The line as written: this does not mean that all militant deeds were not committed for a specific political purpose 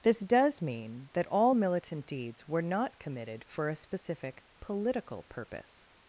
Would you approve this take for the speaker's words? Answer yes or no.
no